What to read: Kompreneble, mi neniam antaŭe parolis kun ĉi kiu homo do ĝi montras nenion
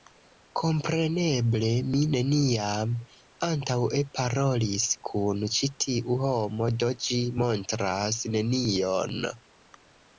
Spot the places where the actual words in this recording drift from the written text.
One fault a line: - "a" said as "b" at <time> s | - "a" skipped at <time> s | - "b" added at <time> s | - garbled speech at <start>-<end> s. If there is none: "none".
- "kiu" said as "tiu" at 5.9 s